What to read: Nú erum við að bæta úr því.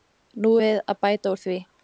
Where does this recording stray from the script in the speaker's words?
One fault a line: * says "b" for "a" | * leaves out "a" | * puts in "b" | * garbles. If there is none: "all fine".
* leaves out "erum"